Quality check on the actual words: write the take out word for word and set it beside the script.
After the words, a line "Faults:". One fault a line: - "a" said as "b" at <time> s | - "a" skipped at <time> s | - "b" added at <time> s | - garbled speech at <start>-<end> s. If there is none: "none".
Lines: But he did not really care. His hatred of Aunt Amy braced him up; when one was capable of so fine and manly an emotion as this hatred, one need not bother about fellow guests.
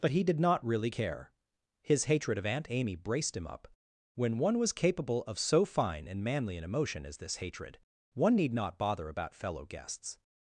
But he did not really care. His hatred of Aunt Amy braced him up; when one was capable of so fine and manly an emotion as this hatred, one need not bother about fellow guests.
Faults:
none